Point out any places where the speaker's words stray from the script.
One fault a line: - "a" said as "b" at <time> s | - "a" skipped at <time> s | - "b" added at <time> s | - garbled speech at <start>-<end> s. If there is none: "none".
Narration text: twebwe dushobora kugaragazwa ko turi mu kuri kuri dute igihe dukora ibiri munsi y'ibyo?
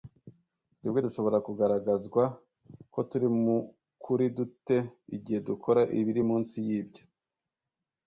- "kuri" skipped at 4.2 s